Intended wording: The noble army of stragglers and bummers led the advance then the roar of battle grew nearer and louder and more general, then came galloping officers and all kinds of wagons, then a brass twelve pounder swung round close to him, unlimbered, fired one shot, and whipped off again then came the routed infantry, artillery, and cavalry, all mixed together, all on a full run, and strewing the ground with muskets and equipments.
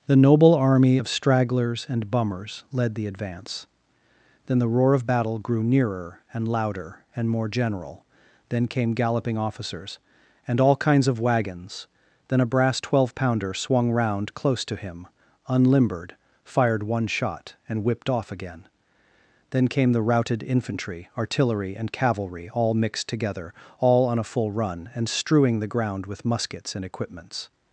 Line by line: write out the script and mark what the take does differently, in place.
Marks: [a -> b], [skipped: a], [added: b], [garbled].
The noble army of stragglers and bummers led the advance then the roar of battle grew nearer and louder and more general, then came galloping officers and all kinds of wagons, then a brass twelve pounder swung round close to him, unlimbered, fired one shot, and whipped off again then came the routed infantry, artillery, and cavalry, all mixed together, all on a full run, and strewing the ground with muskets and equipments.